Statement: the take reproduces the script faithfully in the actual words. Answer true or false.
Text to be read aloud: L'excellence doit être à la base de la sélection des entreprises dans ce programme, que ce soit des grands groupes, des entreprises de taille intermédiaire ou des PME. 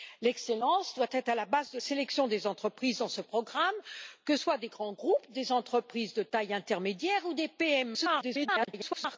false